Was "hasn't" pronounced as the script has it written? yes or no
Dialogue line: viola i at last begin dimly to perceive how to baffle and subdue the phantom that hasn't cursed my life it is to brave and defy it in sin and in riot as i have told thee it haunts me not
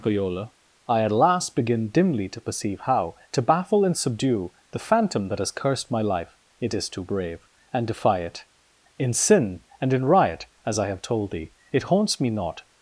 no